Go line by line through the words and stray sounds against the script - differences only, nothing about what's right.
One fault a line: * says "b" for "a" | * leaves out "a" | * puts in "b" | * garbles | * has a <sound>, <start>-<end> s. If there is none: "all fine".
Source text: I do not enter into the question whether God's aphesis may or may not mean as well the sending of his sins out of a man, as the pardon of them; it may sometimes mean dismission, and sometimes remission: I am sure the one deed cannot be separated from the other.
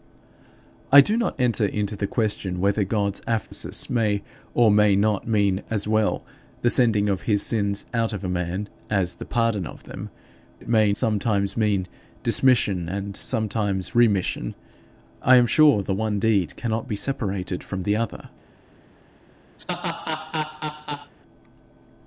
* has a dropout, 3.5-3.5 s
* has a laugh, 19.6-21.1 s